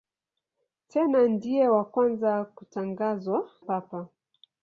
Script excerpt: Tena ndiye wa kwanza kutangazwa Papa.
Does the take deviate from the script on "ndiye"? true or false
false